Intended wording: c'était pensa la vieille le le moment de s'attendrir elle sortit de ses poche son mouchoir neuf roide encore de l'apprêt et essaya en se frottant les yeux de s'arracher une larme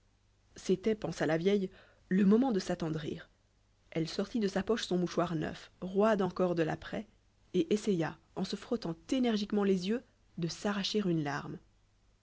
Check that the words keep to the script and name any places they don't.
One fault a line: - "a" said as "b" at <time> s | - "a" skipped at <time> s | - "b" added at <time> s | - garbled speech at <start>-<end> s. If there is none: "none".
- "le" skipped at 2.2 s
- "ses" said as "sa" at 4.5 s
- "énergiquement" added at 9.1 s